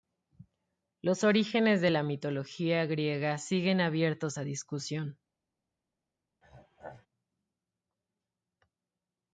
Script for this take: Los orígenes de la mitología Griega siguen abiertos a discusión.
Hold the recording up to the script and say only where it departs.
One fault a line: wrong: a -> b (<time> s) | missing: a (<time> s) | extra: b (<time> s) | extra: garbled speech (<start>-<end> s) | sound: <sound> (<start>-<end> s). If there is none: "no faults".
sound: throat clearing (6.4-7.1 s)